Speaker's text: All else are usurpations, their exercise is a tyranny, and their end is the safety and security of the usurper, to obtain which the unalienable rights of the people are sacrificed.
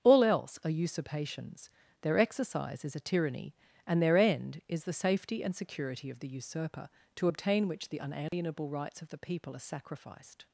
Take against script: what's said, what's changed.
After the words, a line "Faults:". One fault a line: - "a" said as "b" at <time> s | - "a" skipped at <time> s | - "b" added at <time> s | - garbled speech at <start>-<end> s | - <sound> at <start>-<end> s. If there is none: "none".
All else are usurpations, their exercise is a tyranny, and their end is the safety and security of the usurper, to obtain which the unalienable rights of the people are sacrificed.
Faults:
- dropout at 8.3-8.3 s